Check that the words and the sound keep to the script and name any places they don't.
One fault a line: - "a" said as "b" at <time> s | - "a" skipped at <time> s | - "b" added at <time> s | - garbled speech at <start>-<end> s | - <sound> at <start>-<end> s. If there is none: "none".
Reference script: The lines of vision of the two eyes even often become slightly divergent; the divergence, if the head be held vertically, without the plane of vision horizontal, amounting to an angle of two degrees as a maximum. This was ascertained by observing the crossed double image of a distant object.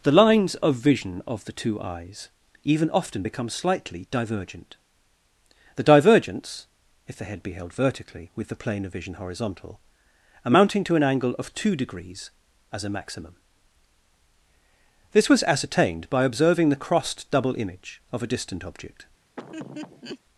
- "without" said as "with" at 8.3 s
- laugh at 19.4-20.2 s